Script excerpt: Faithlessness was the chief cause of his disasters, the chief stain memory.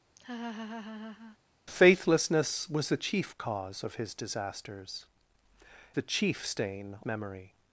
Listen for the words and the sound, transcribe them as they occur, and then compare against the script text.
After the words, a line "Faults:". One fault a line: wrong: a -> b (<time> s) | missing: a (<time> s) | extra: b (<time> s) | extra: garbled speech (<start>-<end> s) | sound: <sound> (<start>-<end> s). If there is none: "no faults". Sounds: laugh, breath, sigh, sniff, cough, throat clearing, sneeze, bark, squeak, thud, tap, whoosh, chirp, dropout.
Faithlessness was the chief cause of his disasters, the chief stain memory.
Faults:
sound: laugh (0.2-1.4 s)